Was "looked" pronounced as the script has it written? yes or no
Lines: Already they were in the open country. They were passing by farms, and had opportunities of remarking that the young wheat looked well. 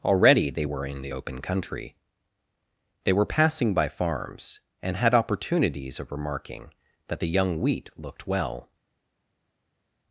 yes